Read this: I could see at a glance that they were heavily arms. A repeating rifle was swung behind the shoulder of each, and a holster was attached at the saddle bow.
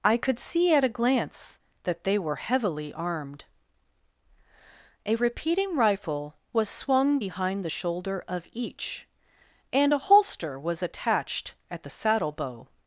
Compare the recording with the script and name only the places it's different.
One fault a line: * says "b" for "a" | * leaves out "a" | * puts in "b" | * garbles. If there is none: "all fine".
* says "armed" for "arms"